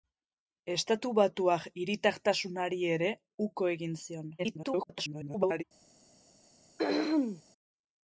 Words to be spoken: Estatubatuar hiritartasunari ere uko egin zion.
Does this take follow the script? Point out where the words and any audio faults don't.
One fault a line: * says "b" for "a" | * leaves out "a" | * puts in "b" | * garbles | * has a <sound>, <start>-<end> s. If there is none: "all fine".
* garbles
* has a throat clearing, 6.8-7.4 s